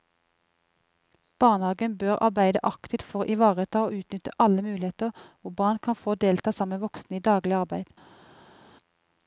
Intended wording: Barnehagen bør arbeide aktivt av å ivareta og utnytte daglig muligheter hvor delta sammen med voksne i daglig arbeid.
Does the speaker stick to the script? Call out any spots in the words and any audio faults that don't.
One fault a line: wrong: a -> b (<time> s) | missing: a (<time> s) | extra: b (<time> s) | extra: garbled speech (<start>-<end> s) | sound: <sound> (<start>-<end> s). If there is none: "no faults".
wrong: av -> for (3.1 s)
wrong: daglig -> alle (4.5 s)
extra: barn kan få (5.6 s)